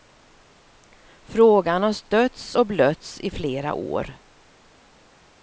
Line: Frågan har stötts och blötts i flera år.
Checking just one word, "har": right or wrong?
right